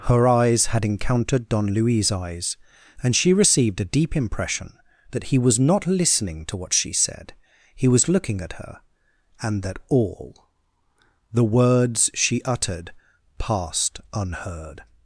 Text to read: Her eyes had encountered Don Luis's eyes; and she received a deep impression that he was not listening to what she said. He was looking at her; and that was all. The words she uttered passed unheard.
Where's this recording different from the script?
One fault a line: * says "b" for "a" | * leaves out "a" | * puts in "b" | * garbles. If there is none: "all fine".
* leaves out "was"